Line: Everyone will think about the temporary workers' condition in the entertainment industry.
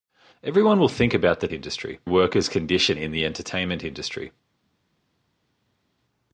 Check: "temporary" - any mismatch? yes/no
yes